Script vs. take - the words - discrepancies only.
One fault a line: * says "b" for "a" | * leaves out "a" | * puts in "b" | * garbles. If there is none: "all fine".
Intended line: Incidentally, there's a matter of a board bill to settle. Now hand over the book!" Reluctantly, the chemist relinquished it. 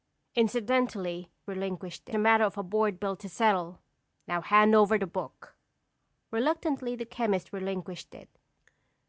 * says "relinquished" for "there's"